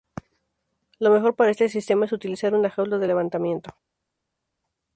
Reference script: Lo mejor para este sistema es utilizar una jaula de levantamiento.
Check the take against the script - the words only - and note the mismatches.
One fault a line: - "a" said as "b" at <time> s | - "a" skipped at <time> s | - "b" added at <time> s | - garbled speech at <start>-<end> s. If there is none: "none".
none